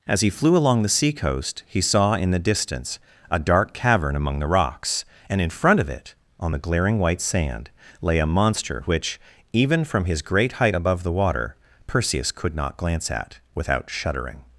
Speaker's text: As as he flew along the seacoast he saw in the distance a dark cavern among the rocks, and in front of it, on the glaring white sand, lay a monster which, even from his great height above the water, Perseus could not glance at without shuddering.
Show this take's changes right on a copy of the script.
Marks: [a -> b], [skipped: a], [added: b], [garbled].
As [skipped: as] he flew along the seacoast he saw in the distance a dark cavern among the rocks, and in front of it, on the glaring white sand, lay a monster which, even from his great height above the water, Perseus could not glance at without shuddering.